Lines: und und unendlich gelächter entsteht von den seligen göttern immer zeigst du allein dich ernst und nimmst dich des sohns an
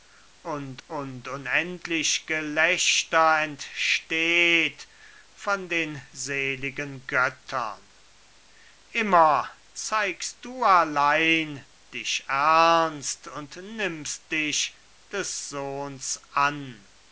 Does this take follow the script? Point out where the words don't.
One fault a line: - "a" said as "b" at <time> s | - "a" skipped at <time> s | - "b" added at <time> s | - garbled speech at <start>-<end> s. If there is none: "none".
none